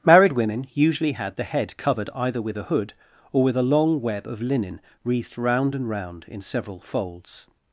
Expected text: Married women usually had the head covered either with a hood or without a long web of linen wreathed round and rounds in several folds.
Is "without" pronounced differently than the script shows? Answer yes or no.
yes